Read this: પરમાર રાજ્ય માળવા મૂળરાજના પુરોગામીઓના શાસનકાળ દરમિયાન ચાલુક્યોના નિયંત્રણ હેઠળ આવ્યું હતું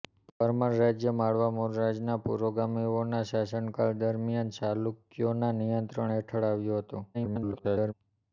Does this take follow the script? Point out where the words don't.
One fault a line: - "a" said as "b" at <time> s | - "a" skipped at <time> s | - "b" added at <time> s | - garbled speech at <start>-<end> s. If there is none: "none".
- garbled speech at 7.1-7.9 s